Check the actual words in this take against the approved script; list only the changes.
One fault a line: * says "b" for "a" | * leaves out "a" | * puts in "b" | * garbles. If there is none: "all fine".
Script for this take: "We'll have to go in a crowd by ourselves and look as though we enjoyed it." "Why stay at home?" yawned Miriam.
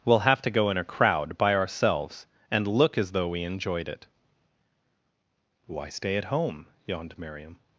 all fine